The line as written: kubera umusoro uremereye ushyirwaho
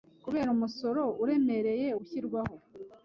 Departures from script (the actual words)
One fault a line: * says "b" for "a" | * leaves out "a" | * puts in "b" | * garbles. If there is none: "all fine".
all fine